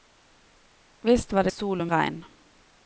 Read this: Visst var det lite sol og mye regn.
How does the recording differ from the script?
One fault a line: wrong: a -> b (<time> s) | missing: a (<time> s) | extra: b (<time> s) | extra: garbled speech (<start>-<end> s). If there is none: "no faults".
missing: lite (1.5 s)
missing: mye (1.9 s)